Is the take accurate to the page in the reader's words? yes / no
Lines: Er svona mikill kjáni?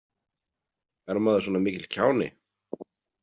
no